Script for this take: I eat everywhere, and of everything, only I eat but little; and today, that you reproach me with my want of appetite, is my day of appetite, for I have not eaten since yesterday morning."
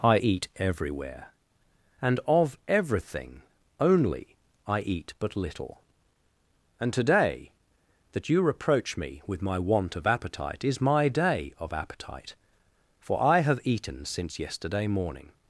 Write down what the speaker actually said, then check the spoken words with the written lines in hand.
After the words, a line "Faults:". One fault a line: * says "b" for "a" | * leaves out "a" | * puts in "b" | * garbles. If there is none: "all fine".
I eat everywhere, and of everything, only I eat but little; and today, that you reproach me with my want of appetite, is my day of appetite, for I have eaten since yesterday morning."
Faults:
* leaves out "not"